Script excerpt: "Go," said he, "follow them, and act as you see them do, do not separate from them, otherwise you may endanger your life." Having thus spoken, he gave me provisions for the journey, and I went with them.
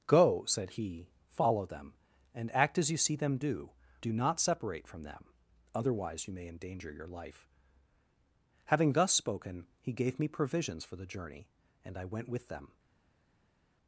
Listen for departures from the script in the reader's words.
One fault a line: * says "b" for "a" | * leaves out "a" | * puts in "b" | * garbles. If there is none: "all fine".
all fine